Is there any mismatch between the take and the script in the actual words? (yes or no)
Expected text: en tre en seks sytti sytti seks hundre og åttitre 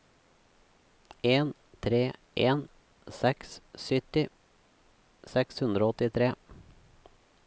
yes